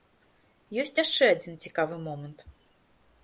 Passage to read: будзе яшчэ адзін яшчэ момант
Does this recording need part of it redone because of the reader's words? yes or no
yes